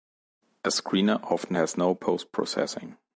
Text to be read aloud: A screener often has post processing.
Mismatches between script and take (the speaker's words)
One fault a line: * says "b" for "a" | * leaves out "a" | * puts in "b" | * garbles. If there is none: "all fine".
* puts in "no"